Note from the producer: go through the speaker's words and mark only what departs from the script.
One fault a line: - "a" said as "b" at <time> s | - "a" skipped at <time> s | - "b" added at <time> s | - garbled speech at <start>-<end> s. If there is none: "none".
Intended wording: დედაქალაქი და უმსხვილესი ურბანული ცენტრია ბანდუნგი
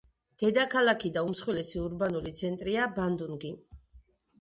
none